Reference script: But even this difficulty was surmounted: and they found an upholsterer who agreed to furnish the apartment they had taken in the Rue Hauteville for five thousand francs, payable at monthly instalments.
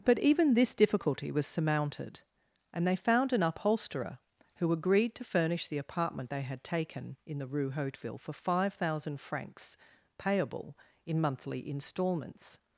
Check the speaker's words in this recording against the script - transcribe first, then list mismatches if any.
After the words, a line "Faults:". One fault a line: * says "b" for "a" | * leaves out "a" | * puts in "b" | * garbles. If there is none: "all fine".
But even this difficulty was surmounted: and they found an upholsterer who agreed to furnish the apartment they had taken in the Rue Hauteville for five thousand francs, payable in monthly instalments.
Faults:
* says "in" for "at"